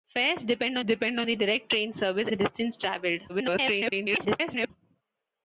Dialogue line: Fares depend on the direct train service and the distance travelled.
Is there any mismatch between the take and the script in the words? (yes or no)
yes